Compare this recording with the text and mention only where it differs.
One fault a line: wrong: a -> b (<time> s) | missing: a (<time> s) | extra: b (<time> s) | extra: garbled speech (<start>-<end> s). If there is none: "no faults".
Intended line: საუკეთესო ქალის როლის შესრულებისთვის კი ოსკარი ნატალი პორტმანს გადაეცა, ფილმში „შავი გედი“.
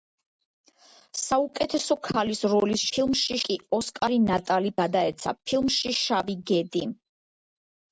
wrong: შესრულებისთვის -> ფილმში (2.9 s)
missing: პორტმანს (4.7 s)